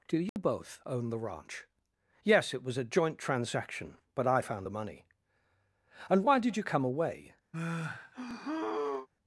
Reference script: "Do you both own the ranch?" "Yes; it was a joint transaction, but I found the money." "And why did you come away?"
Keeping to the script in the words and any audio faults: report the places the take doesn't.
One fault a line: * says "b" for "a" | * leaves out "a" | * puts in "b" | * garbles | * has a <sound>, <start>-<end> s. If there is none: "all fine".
* has a dropout, 0.3-0.4 s
* has a sigh, 7.5-9.1 s